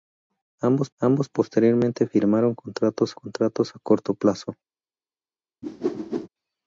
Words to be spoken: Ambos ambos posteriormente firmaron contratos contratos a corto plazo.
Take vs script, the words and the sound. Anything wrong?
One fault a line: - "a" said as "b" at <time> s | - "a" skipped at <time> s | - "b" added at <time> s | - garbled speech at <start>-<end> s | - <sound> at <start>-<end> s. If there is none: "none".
- whoosh at 5.6-6.3 s